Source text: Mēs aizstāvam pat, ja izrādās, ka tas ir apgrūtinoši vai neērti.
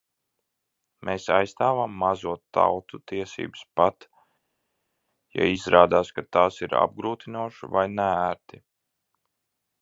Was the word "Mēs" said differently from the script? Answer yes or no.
no